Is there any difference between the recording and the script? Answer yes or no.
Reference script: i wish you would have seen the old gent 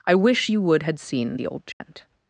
yes